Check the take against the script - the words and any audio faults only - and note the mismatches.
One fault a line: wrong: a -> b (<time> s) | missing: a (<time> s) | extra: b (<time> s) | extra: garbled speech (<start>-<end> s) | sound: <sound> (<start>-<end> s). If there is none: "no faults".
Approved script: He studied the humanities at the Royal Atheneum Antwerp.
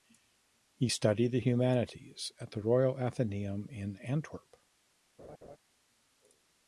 extra: in (3.7 s)
sound: laugh (5.2-5.6 s)